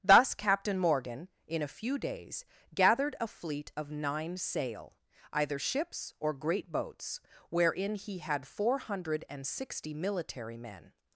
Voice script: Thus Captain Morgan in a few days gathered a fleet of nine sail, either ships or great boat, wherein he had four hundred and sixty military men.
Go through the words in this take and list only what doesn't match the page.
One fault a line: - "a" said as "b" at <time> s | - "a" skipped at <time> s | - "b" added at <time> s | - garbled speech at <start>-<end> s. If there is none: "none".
- "boat" said as "boats" at 6.7 s